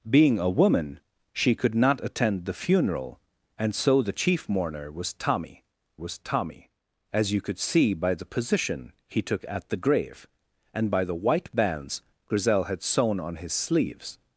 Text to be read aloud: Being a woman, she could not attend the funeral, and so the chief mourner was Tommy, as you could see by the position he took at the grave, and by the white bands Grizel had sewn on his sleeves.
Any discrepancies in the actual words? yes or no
yes